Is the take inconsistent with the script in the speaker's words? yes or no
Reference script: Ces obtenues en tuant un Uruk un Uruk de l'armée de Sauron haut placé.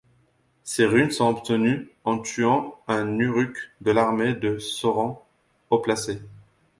yes